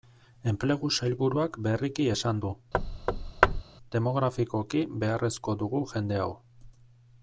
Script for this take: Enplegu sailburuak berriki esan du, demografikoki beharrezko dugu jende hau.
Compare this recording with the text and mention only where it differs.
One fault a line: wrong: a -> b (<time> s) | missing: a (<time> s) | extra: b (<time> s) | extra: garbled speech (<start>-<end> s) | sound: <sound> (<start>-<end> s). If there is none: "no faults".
sound: thud (2.7-3.6 s)